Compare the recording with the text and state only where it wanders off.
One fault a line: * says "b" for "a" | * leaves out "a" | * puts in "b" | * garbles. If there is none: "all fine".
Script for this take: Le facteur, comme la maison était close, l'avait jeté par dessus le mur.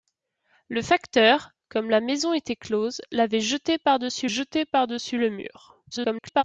* puts in "jeté par dessus"
* garbles